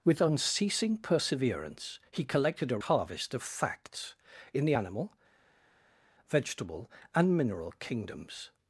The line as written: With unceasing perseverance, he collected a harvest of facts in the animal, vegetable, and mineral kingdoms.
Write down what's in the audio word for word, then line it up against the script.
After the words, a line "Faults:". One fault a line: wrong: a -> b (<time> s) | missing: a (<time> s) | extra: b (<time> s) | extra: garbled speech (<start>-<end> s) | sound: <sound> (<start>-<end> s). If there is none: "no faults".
With unceasing perseverance, he collected a harvest of facts in the animal, vegetable, and mineral kingdoms.
Faults:
no faults